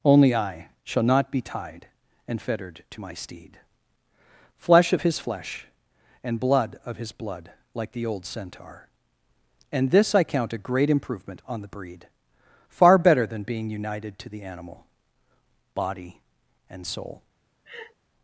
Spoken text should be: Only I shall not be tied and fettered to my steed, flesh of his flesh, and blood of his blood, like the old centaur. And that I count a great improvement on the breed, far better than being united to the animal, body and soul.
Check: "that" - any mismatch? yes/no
yes